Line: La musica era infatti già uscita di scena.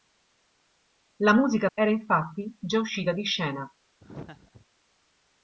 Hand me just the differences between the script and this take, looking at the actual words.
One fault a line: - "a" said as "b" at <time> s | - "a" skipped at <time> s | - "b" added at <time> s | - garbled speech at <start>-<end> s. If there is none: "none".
none